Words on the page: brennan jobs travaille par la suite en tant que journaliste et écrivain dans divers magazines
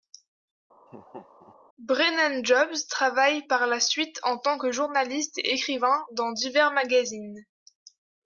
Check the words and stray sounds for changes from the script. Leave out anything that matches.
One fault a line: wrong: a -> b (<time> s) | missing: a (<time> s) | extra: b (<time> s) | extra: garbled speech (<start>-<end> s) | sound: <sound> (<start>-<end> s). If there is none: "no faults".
sound: laugh (0.9-1.6 s)